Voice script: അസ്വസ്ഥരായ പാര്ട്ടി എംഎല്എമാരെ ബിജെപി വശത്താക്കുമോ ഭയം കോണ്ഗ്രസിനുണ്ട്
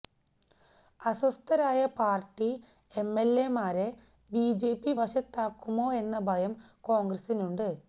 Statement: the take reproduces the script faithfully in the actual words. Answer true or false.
false